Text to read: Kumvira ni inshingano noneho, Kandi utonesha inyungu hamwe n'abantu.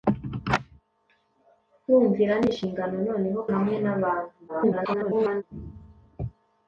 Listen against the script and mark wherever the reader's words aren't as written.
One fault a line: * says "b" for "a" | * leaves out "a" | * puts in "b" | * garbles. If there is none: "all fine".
* leaves out "Kandi utonesha inyungu"
* garbles